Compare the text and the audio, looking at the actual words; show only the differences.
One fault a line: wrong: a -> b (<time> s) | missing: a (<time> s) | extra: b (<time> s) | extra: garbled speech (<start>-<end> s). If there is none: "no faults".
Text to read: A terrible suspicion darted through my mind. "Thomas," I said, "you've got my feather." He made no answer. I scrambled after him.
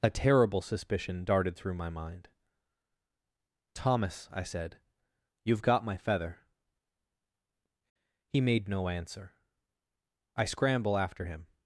wrong: scrambled -> scramble (10.4 s)